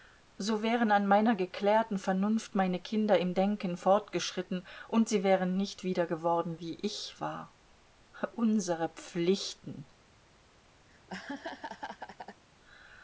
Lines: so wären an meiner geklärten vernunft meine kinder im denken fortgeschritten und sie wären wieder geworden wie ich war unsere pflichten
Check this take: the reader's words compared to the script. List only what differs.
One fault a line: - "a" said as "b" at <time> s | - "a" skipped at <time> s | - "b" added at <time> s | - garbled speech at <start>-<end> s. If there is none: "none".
- "nicht" added at 5.6 s